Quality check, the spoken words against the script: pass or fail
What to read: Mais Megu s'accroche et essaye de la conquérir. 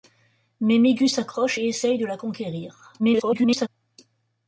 fail